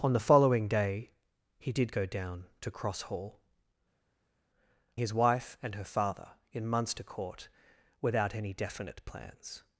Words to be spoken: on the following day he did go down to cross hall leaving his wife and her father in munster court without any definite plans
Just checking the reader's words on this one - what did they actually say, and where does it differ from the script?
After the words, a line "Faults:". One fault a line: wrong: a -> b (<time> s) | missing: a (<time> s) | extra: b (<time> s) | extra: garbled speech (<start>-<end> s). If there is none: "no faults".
on the following day he did go down to cross hall his wife and her father in munster court without any definite plans
Faults:
missing: leaving (3.4 s)